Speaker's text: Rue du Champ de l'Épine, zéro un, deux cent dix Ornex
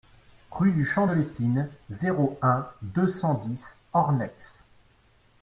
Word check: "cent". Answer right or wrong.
right